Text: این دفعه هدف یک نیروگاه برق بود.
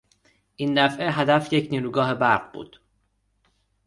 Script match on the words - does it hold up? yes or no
yes